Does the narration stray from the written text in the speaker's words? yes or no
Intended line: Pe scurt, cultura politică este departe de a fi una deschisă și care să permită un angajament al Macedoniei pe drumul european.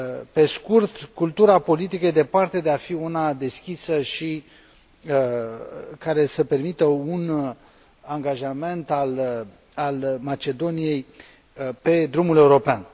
no